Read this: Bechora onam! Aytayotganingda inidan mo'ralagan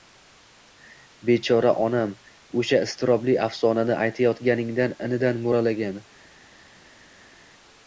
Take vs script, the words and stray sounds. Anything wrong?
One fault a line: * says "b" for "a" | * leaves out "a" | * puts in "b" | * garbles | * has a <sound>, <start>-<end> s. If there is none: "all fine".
* puts in "O'sha iztirobli afsonani"